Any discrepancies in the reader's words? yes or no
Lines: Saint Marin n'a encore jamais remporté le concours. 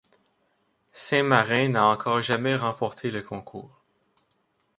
no